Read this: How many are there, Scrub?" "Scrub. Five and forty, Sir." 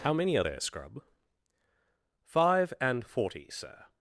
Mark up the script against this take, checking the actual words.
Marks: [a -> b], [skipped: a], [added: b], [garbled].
How many are there, Scrub?" [skipped: "Scrub.] Five and forty, Sir."